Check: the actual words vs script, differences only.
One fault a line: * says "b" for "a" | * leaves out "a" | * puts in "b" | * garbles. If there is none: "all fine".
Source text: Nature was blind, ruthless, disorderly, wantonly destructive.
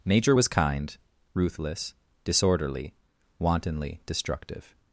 * says "kind" for "blind"